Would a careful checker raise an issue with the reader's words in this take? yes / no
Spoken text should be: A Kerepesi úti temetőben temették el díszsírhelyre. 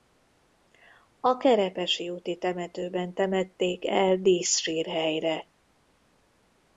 no